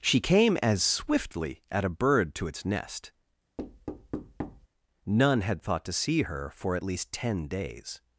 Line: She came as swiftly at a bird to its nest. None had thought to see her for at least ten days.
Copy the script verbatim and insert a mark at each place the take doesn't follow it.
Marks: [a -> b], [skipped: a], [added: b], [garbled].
She came as swiftly at a bird to its nest. None had thought to see her for at least ten days.